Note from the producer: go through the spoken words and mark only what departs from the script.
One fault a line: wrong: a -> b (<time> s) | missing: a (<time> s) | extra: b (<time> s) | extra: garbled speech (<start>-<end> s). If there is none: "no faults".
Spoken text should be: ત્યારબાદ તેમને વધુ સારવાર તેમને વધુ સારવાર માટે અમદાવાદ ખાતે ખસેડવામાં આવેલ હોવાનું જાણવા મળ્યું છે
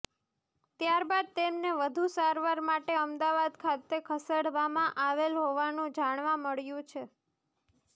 missing: તેમને વધુ સારવાર (2.6 s)